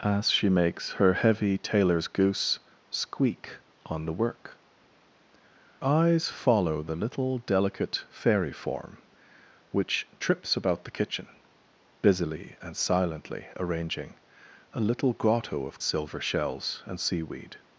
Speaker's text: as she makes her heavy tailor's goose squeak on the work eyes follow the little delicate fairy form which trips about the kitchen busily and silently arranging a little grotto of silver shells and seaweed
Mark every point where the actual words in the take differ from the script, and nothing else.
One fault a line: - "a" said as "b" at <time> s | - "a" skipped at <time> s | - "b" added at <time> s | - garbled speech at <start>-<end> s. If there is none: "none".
none